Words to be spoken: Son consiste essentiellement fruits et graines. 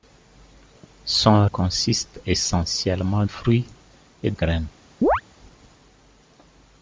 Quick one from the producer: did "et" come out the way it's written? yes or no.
yes